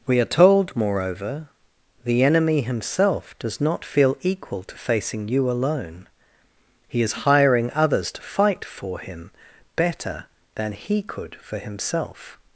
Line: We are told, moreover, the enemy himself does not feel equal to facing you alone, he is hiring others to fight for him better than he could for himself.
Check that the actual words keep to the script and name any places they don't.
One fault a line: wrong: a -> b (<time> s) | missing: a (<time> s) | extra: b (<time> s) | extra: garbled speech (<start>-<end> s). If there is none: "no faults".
no faults